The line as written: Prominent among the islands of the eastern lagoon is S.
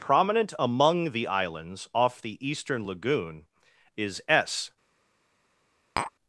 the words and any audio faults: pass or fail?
fail